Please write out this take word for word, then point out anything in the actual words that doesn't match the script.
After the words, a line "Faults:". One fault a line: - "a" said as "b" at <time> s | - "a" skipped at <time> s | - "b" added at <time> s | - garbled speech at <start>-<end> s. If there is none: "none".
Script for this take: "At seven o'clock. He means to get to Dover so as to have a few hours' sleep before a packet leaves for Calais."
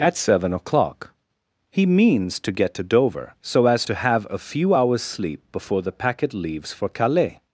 "At seven o'clock. He means to get to Dover so as to have a few hours' sleep before the packet leaves for Calais."
Faults:
- "a" said as "the" at 5.8 s